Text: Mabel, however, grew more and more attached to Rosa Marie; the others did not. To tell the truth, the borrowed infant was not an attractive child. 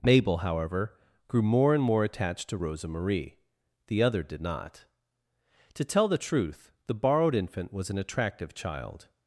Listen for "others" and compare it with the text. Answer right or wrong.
wrong